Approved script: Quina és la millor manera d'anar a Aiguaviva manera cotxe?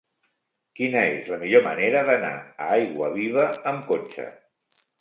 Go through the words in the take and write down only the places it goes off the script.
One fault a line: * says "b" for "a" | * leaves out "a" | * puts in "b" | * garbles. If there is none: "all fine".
* says "amb" for "manera"